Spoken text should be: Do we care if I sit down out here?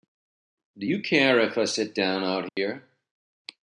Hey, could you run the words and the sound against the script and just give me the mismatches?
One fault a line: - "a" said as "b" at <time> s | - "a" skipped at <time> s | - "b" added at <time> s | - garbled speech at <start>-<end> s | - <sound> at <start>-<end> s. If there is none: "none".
- "we" said as "you" at 0.8 s
- dropout at 2.5-2.6 s